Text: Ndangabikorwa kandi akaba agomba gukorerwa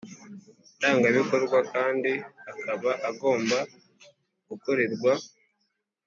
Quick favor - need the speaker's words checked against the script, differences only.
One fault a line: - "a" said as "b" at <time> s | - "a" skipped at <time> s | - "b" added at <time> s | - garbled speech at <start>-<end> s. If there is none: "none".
none